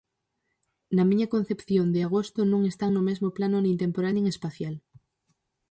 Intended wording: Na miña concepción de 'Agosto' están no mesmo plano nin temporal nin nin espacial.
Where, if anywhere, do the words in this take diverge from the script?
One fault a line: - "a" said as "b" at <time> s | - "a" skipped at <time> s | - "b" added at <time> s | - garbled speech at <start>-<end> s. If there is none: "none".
- "non" added at 2.5 s
- "nin" skipped at 4.3 s